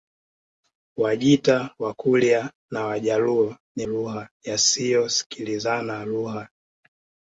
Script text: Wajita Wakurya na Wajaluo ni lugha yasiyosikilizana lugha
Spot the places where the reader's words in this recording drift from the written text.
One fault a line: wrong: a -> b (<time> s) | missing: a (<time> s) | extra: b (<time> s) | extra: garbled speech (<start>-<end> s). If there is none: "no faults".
no faults